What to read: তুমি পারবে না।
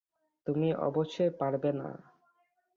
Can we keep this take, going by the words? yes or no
no